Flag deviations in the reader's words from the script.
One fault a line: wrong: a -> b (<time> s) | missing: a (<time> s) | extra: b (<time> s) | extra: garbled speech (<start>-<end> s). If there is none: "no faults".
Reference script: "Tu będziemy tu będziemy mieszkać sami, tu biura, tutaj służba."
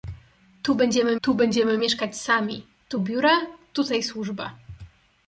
no faults